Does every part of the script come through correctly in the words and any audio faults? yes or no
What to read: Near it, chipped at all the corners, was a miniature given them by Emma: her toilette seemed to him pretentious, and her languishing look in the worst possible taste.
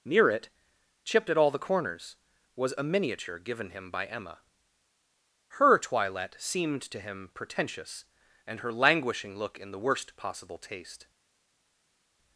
no